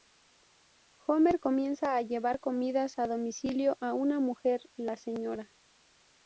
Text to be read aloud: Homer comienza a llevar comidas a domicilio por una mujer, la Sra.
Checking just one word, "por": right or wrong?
wrong